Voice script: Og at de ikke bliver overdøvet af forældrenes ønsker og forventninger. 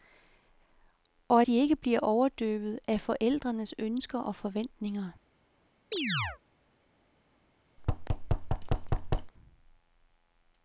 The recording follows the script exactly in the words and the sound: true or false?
false